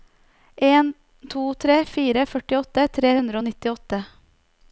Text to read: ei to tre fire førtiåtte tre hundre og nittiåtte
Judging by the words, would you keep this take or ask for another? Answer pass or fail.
fail